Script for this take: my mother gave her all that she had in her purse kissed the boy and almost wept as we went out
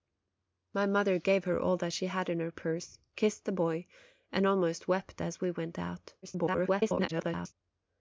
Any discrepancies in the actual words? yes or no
yes